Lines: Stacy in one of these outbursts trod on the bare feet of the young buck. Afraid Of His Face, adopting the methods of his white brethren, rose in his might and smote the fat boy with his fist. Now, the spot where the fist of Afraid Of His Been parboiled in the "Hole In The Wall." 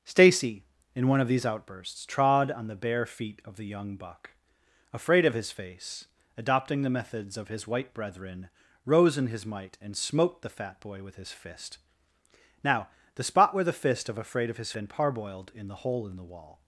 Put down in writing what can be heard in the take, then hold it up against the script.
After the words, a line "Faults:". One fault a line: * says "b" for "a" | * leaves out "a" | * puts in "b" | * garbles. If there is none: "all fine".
Stacy in one of these outbursts trod on the bare feet of the young buck. Afraid Of His Face, adopting the methods of his white brethren, rose in his might and smote the fat boy with his fist. Now, the spot where the fist of Afraid Of His Been parboiled in the "Hole In The Wall."
Faults:
all fine